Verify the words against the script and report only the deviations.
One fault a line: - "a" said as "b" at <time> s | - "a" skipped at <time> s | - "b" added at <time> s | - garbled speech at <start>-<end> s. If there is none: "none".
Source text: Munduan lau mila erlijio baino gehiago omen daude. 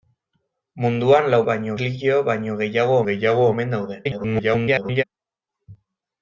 - "mila" said as "baino" at 1.5 s
- "gehiago" added at 3.1 s
- garbled speech at 4.0-5.0 s